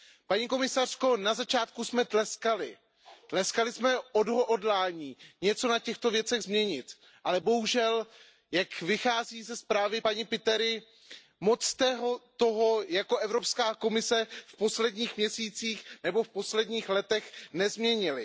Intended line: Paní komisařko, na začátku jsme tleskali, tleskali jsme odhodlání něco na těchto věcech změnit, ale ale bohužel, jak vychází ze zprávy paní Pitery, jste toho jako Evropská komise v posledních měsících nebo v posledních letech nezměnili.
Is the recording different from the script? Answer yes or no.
yes